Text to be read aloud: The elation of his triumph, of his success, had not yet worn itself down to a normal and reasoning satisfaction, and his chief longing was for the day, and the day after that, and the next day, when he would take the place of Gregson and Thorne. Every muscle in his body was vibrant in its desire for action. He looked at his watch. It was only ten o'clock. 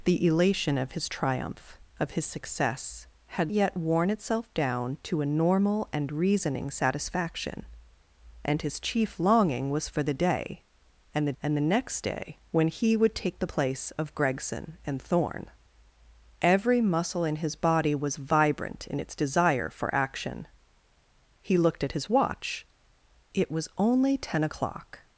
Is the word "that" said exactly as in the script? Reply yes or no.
no